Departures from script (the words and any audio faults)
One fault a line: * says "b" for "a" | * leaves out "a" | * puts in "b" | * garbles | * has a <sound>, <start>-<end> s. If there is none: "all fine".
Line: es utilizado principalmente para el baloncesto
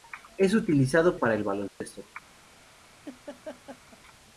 * leaves out "principalmente"
* has a dropout, 1.7-1.8 s
* has a laugh, 3.0-4.0 s